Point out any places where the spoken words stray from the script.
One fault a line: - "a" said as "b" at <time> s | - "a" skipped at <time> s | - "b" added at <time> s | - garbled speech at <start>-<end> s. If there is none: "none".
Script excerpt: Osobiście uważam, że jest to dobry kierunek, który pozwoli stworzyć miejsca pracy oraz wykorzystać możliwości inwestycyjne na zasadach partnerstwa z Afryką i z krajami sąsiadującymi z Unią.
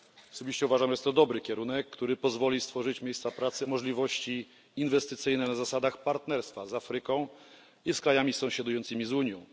- "oraz wykorzystać" skipped at 3.7 s